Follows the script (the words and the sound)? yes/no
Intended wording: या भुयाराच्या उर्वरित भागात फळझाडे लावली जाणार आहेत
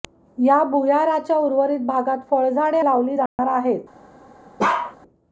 no